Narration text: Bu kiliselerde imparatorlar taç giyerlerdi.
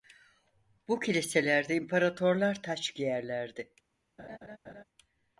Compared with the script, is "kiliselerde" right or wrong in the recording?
right